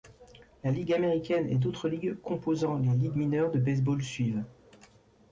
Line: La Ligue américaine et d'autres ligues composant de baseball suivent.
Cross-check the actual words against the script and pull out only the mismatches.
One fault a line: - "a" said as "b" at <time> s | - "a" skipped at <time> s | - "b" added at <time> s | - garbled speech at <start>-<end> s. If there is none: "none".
- "les Ligues mineures" added at 2.8 s